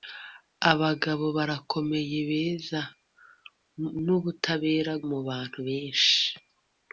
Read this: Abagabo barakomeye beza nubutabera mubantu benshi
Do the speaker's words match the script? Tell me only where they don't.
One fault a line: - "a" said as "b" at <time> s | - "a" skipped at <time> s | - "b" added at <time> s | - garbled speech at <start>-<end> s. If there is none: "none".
none